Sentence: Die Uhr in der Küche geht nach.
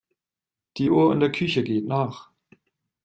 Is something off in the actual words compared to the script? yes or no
no